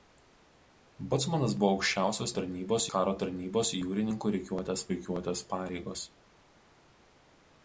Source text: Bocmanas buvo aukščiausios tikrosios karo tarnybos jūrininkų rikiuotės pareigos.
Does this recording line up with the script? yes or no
no